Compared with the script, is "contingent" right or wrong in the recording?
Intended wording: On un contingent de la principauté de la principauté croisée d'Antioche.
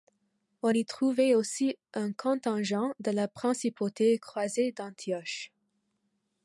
wrong